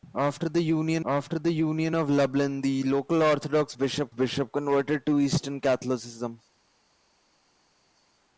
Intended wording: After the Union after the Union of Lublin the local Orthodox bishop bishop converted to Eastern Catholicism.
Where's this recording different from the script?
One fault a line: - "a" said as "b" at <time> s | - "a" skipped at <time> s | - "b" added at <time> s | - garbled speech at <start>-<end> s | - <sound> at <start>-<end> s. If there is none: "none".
none